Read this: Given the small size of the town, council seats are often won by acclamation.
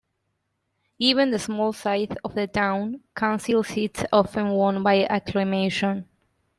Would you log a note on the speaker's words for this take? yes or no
yes